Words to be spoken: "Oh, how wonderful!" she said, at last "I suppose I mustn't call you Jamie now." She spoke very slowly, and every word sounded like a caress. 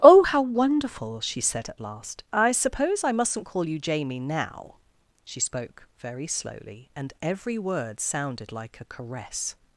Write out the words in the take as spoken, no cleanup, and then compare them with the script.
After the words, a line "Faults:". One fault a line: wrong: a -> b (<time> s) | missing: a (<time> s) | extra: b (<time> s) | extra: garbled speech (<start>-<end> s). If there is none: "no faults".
"Oh, how wonderful!" she said, at last "I suppose I mustn't call you Jamie now." She spoke very slowly, and every word sounded like a caress.
Faults:
no faults